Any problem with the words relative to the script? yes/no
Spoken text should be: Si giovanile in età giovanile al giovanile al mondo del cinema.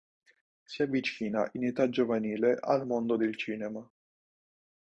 yes